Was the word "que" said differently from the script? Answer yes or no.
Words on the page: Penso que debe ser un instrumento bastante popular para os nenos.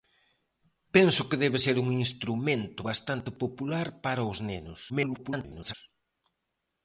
no